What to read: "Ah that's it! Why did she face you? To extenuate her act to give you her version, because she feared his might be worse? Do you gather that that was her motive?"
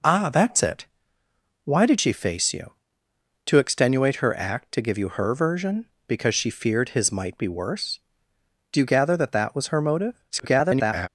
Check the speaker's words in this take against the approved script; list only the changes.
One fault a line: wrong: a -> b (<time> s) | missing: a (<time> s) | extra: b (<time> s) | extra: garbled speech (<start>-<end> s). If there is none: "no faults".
extra: garbled speech (10.3-11.1 s)